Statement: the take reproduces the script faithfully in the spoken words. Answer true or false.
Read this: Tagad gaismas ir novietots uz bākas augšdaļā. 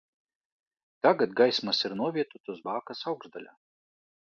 true